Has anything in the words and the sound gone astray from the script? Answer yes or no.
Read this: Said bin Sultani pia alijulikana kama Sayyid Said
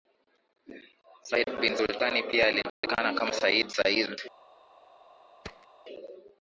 yes